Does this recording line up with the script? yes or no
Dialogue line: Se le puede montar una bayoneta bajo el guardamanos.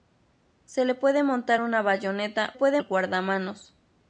no